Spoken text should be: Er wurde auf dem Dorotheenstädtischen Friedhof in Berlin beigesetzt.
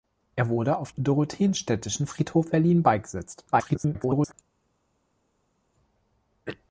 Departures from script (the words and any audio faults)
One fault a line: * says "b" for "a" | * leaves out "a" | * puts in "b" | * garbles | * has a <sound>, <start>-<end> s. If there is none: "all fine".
* leaves out "dem"
* leaves out "in"
* garbles